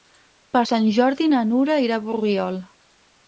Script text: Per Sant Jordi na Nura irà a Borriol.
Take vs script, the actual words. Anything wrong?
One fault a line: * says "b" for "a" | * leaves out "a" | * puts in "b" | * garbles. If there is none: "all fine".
all fine